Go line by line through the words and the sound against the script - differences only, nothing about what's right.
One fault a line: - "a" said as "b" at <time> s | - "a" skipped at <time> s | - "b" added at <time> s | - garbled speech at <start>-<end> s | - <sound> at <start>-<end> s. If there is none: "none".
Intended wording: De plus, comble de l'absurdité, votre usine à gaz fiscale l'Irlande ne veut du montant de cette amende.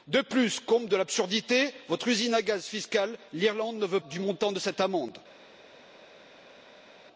none